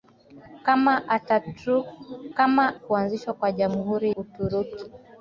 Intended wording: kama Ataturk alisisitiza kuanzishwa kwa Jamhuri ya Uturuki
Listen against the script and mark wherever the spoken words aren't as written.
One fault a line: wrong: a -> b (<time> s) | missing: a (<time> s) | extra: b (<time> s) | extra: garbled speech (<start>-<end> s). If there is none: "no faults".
wrong: alisisitiza -> kama (2.3 s)
missing: ya (4.1 s)